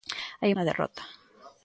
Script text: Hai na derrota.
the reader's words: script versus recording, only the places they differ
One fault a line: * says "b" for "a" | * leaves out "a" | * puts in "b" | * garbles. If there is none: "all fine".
all fine